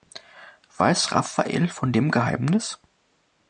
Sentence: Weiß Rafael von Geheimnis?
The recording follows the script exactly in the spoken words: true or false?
false